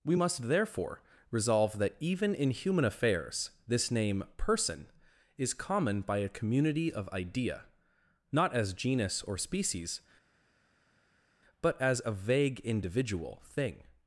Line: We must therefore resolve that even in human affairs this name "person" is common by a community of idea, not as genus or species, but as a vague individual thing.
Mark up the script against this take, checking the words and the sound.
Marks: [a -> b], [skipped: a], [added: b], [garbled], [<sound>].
We must therefore resolve that even in human affairs this name "person" is common by a community of idea, not as genus or species, but as a vague individual thing.